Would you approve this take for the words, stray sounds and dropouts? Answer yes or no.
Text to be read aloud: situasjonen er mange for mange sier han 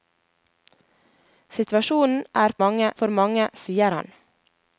yes